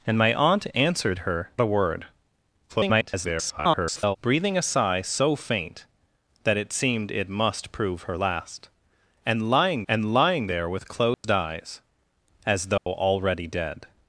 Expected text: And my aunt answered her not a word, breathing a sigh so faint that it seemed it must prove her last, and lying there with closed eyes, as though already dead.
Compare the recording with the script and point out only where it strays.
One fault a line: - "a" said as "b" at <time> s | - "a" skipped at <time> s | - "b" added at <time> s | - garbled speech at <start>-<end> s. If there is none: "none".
- "not" skipped at 1.5 s
- garbled speech at 2.7-4.2 s
- "and lying" added at 9.9 s